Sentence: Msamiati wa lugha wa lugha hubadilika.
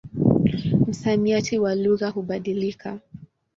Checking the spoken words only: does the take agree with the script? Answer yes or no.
no